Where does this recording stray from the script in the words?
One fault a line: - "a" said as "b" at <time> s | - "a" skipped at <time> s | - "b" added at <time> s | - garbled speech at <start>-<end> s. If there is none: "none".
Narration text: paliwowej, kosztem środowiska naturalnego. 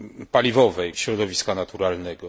- "kosztem" skipped at 0.9 s